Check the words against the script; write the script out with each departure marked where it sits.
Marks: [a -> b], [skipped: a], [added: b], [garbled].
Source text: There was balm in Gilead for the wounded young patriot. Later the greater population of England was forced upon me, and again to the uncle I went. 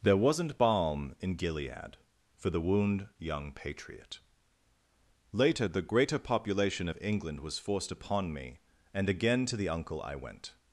There [was -> wasn't] balm in Gilead for the [wounded -> wound] young patriot. Later the greater population of England was forced upon me, and again to the uncle I went.